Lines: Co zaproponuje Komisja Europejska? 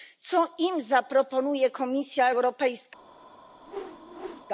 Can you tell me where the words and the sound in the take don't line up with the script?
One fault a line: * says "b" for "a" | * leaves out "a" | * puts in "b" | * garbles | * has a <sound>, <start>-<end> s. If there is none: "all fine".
* puts in "im"
* has a whoosh, 3.6-4.5 s